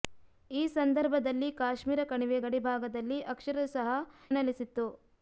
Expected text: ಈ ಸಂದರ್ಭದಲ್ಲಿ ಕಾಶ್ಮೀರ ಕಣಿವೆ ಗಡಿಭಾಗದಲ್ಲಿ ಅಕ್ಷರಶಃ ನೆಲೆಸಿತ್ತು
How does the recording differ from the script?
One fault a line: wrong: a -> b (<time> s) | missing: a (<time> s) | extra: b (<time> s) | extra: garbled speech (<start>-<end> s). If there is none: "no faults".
no faults